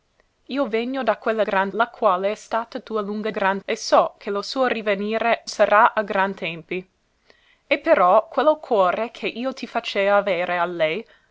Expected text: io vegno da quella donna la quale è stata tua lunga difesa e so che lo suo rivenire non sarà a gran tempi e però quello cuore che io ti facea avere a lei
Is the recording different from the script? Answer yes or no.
yes